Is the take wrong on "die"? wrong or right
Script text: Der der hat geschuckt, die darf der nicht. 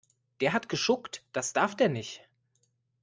wrong